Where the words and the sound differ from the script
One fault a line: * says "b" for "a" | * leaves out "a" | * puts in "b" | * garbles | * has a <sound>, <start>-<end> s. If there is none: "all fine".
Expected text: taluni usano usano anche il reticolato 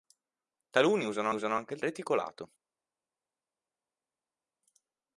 all fine